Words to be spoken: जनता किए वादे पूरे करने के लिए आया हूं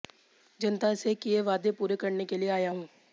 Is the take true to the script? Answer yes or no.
no